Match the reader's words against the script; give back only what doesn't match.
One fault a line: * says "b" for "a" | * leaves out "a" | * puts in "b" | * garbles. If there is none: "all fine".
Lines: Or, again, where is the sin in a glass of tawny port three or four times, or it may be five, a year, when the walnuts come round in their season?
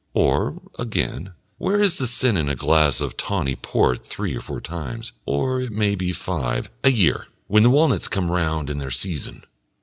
all fine